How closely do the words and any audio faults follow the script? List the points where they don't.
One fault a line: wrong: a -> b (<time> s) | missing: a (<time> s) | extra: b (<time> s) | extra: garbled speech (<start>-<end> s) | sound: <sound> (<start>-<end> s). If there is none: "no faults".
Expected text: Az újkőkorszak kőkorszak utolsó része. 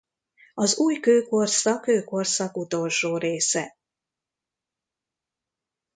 no faults